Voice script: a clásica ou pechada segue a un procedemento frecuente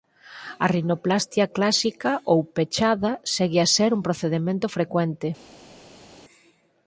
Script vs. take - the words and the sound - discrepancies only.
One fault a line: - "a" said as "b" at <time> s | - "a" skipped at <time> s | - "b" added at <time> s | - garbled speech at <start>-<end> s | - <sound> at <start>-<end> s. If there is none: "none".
- "rinoplastia" added at 0.8 s
- "ser" added at 3.8 s